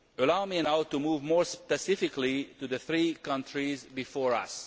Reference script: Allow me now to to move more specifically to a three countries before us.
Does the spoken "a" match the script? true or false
false